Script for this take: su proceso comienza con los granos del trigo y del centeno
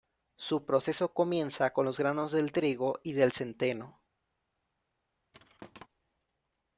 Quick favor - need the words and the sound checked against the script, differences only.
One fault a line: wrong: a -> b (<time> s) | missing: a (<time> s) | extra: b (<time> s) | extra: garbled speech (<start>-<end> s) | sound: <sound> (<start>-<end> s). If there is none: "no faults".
sound: thud (5.3-5.9 s)